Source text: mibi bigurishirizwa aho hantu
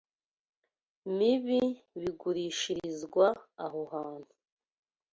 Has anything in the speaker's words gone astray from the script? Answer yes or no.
no